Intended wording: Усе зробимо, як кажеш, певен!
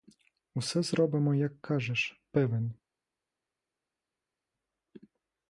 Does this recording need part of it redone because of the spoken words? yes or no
no